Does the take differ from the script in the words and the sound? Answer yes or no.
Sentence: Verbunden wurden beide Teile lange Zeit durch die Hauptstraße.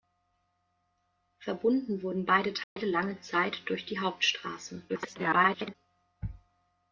yes